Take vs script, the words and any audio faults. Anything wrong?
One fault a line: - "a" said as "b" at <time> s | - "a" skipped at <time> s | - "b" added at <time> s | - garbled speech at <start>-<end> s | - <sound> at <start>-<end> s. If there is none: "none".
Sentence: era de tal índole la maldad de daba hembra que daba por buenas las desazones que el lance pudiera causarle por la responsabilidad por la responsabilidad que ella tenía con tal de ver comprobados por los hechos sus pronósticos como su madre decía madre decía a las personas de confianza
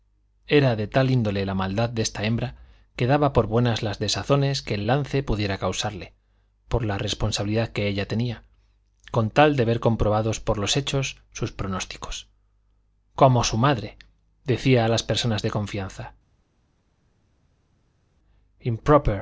- "daba" said as "esta" at 2.0 s
- "por la responsabilidad" skipped at 7.7 s
- "madre decía" skipped at 14.9 s